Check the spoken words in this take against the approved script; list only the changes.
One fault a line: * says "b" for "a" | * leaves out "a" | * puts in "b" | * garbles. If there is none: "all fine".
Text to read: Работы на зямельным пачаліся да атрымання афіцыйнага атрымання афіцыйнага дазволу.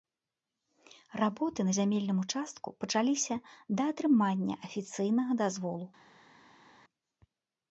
* puts in "участку"
* leaves out "атрымання афіцыйнага"